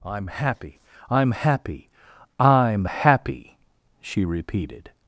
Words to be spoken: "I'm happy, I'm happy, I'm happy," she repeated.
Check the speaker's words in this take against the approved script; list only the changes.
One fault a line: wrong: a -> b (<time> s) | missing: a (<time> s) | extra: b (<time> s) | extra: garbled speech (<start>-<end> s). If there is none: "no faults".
no faults